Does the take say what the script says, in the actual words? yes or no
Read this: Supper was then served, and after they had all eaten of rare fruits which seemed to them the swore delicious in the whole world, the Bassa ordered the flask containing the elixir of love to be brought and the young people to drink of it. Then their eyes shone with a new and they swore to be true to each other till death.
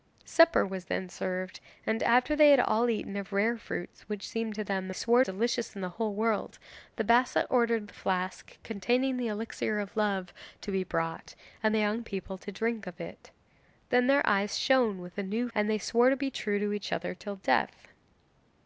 yes